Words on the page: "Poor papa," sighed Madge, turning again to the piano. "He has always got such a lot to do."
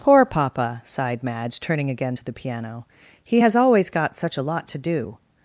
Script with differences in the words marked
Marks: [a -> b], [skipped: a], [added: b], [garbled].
"Poor papa," sighed Madge, turning again to the piano. "He has always got such a lot to do."